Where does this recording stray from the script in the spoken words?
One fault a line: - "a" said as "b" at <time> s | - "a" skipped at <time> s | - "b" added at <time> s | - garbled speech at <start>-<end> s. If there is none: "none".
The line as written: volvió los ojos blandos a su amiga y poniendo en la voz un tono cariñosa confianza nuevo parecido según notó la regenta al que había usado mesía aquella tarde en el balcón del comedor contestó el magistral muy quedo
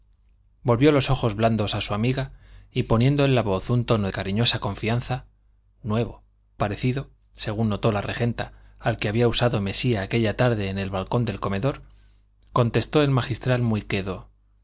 none